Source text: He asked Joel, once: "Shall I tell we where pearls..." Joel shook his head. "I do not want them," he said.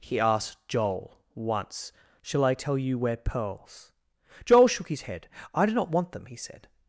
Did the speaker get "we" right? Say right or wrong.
wrong